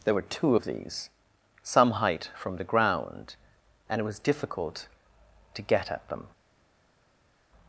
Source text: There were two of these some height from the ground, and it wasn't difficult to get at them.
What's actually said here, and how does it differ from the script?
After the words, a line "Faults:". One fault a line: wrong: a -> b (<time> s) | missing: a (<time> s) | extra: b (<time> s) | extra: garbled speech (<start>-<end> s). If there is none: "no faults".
There were two of these some height from the ground, and it was difficult to get at them.
Faults:
wrong: wasn't -> was (4.0 s)